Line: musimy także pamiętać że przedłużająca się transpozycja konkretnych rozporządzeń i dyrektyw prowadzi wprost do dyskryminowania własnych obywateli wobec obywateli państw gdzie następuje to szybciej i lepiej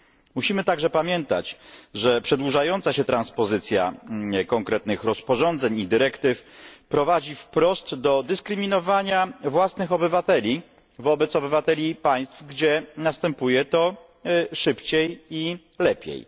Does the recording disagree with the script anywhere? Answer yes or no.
no